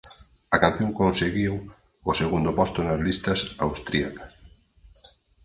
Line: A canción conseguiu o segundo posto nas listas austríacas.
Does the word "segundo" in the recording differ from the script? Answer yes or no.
no